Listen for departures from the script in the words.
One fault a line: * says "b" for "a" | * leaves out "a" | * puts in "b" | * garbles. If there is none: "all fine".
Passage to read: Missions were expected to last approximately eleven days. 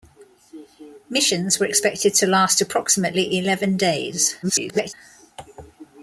* garbles